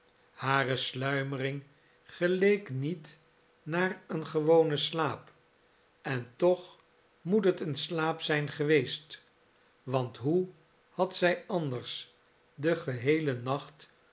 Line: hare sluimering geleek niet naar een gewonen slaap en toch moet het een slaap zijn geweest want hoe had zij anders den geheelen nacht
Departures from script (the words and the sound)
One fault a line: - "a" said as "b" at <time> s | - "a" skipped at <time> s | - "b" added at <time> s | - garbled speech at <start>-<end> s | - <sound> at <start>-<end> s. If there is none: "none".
none